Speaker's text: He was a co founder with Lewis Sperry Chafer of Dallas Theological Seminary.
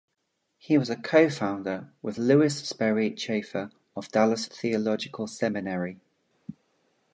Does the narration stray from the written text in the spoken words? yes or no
no